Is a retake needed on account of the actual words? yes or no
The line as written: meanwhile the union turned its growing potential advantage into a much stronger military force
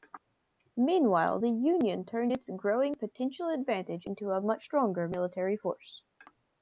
no